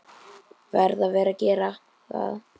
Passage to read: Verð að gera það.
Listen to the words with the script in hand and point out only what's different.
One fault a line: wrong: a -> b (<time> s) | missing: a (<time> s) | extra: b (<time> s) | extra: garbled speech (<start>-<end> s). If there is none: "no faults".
no faults